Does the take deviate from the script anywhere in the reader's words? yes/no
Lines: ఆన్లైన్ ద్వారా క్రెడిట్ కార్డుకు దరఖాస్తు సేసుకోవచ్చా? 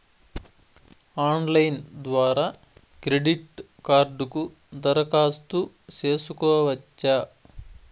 no